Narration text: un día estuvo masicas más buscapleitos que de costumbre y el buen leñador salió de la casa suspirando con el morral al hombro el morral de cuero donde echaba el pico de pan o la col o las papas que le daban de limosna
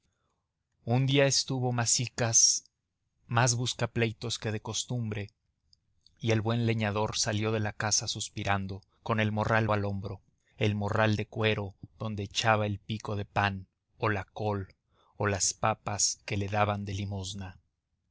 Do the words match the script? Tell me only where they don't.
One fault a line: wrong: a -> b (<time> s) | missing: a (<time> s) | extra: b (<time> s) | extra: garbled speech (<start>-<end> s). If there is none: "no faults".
no faults